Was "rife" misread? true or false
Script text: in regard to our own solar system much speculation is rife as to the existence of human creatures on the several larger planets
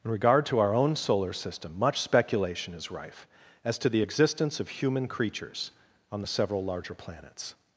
false